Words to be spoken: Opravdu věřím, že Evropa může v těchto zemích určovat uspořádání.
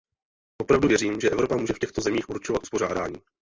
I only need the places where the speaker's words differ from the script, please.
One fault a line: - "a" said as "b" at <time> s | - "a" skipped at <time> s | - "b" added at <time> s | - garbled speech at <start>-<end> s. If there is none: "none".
none